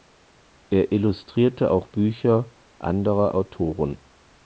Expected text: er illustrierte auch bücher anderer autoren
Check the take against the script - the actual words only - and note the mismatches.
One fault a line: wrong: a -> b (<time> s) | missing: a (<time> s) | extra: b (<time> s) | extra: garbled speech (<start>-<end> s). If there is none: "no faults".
no faults